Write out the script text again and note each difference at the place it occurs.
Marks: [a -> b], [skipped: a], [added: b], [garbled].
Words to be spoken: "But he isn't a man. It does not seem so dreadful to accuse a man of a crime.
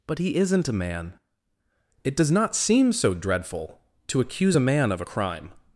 "But he isn't a man. It does not seem so dreadful to accuse a man of a crime.